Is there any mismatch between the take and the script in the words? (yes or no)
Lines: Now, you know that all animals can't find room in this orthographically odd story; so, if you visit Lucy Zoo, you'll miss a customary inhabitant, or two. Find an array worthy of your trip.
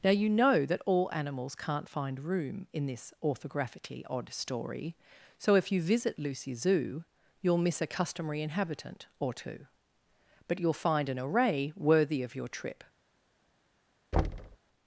yes